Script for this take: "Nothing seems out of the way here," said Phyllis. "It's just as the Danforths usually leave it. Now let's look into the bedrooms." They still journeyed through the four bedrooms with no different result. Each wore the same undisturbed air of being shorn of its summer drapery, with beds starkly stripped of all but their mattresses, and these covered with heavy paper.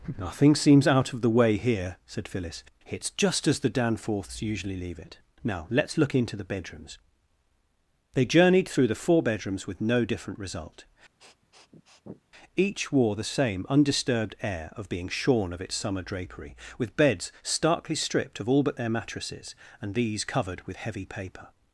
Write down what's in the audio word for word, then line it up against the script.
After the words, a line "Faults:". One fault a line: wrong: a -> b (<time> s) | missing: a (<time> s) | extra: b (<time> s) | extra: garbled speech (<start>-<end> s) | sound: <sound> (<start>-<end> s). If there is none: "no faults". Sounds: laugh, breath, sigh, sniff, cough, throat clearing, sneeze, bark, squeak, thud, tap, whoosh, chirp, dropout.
"Nothing seems out of the way here," said Phyllis. "It's just as the Danforths usually leave it. Now let's look into the bedrooms." They journeyed through the four bedrooms with no different result. Each wore the same undisturbed air of being shorn of its summer drapery, with beds starkly stripped of all but their mattresses, and these covered with heavy paper.
Faults:
missing: still (8.2 s)
sound: sniff (11.2-12.2 s)